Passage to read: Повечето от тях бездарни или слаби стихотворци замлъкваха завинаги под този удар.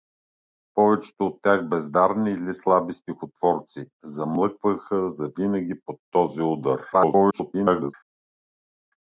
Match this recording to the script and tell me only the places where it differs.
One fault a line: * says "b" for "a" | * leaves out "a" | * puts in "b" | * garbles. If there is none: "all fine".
* garbles